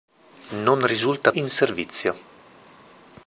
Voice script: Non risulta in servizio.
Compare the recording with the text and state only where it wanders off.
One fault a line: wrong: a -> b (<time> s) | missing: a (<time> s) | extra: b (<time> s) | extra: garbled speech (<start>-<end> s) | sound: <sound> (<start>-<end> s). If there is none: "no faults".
no faults